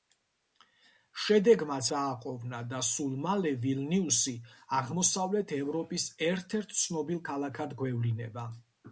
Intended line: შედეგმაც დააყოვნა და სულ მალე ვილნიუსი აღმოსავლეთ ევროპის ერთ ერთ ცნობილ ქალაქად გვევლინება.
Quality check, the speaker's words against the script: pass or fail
pass